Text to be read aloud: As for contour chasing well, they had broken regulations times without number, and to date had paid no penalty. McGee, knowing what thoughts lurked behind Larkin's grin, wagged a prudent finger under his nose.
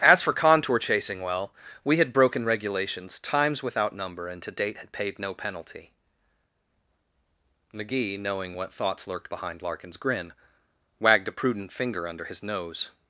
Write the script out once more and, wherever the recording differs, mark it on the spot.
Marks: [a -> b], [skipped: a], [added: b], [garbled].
As for contour chasing well, [they -> we] had broken regulations times without number, and to date had paid no penalty. McGee, knowing what thoughts lurked behind Larkin's grin, wagged a prudent finger under his nose.